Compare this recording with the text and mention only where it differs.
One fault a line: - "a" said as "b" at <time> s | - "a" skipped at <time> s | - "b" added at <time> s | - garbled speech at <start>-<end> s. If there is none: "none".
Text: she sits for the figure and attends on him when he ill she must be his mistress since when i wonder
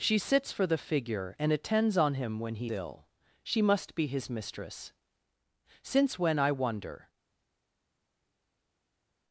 none